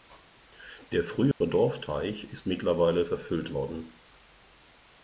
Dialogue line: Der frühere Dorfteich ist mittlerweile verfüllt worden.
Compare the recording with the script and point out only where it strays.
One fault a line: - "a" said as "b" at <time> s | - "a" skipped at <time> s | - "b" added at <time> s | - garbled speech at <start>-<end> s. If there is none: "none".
none